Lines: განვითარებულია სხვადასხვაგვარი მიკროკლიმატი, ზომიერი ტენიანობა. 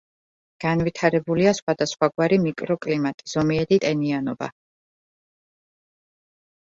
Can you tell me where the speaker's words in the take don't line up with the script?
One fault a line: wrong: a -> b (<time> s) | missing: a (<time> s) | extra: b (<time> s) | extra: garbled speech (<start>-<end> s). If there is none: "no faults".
no faults